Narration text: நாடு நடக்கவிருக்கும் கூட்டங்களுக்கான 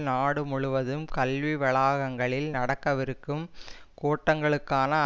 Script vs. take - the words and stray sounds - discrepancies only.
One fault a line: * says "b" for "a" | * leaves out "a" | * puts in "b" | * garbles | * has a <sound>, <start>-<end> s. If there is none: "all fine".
* puts in "முழுவதும் கல்வி வளாகங்களில்"